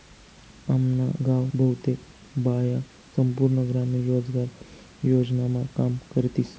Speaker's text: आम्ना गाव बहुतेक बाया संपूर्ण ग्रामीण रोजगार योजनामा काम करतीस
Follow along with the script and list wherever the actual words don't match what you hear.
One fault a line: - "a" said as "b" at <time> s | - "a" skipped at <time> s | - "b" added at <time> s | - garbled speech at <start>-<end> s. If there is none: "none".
none